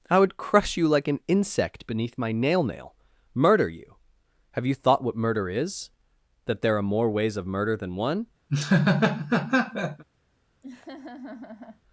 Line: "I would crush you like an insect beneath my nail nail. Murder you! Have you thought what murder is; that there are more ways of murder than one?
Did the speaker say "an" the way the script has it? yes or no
yes